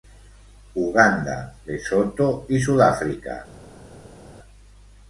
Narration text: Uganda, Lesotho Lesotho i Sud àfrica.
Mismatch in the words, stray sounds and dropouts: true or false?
true